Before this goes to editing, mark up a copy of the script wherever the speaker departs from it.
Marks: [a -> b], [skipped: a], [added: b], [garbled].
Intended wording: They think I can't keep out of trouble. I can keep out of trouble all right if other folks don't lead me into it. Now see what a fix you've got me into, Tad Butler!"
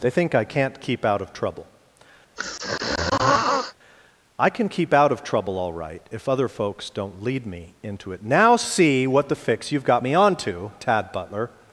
They think I can't keep out of trouble. I can keep out of trouble all right if other folks don't lead me into it. Now see what [a -> the] fix you've got me [into, -> onto] Tad Butler!"